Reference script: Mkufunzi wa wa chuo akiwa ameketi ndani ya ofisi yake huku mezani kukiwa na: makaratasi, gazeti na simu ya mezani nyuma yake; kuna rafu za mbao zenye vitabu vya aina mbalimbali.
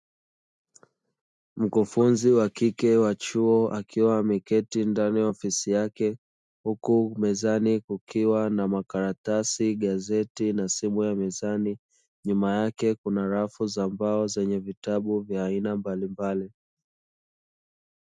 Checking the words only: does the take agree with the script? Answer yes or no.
no